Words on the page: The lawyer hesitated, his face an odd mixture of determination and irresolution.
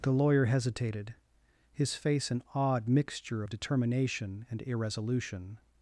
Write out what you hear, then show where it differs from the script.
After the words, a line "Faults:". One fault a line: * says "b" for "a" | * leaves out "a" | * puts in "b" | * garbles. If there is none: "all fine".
The lawyer hesitated, his face an odd mixture of determination and irresolution.
Faults:
all fine